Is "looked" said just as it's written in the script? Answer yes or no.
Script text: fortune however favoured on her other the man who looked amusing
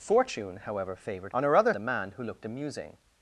yes